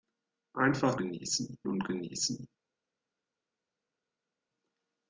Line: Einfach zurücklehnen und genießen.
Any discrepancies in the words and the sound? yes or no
yes